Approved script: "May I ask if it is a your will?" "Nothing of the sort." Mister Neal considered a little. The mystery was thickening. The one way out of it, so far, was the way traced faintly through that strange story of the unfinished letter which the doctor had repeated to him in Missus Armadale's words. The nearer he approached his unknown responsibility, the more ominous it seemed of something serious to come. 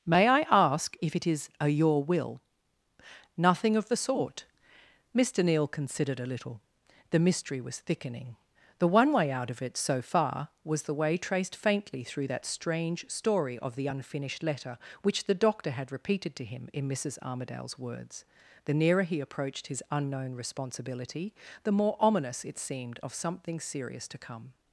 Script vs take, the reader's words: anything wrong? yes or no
no